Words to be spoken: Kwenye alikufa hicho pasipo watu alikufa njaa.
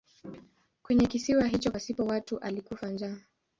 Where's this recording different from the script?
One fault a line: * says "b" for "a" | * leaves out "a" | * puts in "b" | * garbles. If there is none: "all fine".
* says "kisiwa" for "alikufa"